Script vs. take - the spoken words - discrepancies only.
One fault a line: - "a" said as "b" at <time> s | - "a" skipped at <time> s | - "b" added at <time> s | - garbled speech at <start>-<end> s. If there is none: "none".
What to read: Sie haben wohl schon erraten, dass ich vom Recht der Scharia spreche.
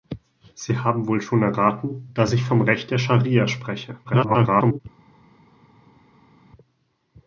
- garbled speech at 4.0-4.8 s